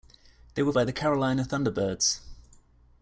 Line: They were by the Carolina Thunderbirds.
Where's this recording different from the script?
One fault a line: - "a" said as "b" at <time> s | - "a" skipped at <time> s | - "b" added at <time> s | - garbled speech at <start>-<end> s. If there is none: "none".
none